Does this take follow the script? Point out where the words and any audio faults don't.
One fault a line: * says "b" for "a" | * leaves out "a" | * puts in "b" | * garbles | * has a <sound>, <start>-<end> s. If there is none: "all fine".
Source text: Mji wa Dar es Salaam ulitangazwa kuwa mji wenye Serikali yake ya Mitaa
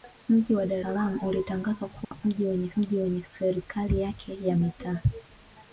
* leaves out "es"
* has a dropout, 2.0-2.1 s
* puts in "mji wenye"